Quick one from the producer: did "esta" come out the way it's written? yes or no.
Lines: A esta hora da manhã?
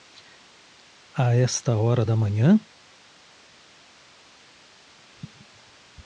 yes